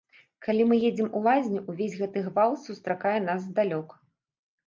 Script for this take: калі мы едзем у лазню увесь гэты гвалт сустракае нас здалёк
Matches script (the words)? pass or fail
pass